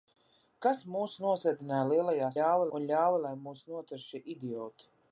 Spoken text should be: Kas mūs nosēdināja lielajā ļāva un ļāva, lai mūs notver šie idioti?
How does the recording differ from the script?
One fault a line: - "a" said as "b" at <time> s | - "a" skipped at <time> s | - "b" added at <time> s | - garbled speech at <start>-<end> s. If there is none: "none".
none